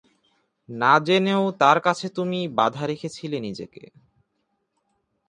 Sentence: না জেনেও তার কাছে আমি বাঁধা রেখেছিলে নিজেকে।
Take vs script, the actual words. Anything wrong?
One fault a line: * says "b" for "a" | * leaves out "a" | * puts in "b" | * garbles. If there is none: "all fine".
* says "তুমি" for "আমি"